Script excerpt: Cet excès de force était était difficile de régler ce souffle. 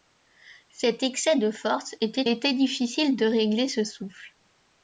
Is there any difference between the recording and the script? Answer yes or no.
no